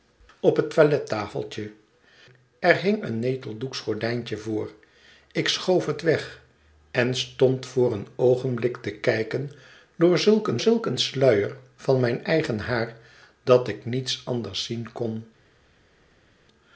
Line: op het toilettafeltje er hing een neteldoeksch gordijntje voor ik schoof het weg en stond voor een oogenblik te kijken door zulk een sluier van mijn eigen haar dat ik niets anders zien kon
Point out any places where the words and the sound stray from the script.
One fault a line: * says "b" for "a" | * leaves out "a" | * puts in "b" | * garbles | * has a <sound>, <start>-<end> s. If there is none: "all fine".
* puts in "zulk een"